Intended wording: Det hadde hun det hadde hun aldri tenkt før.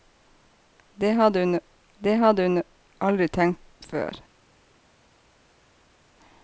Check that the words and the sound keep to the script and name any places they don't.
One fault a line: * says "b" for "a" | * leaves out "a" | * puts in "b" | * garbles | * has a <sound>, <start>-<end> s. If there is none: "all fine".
all fine